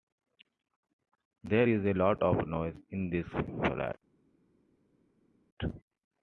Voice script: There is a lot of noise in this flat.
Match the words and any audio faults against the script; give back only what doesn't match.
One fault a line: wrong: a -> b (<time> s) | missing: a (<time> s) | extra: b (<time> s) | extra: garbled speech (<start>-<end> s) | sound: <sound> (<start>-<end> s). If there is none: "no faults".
no faults